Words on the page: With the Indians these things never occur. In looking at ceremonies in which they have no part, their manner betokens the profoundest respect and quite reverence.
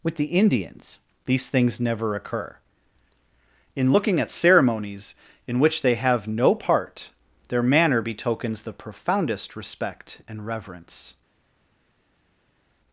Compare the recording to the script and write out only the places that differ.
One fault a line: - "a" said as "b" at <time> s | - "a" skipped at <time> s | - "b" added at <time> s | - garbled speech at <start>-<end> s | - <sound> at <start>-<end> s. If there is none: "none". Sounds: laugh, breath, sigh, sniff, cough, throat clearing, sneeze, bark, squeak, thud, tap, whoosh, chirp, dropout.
- "quite" skipped at 10.5 s